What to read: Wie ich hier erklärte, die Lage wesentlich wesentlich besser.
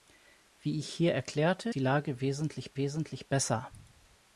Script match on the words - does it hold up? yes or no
yes